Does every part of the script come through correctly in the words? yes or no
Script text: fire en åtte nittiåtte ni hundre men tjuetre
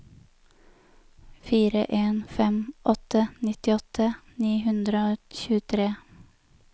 no